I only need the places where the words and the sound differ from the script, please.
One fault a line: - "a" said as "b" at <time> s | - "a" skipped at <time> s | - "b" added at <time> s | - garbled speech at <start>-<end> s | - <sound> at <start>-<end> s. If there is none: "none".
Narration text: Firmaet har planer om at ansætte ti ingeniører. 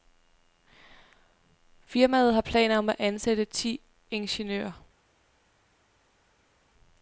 none